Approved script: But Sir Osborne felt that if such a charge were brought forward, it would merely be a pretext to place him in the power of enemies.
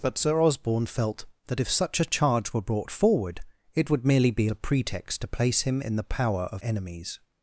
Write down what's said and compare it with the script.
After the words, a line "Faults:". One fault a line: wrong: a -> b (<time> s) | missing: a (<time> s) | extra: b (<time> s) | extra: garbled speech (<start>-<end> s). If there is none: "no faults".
But Sir Osborne felt that if such a charge were brought forward, it would merely be a pretext to place him in the power of enemies.
Faults:
no faults